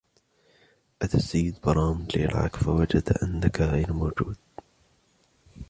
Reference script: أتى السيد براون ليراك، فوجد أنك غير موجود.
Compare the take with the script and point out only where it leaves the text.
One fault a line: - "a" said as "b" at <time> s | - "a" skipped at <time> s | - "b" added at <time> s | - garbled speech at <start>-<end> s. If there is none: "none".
none